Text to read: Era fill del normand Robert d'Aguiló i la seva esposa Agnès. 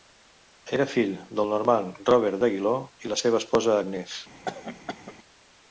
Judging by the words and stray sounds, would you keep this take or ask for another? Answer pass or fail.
fail